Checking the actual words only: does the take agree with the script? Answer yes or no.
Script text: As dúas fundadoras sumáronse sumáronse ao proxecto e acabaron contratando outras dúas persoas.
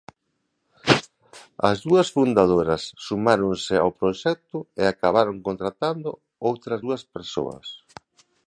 no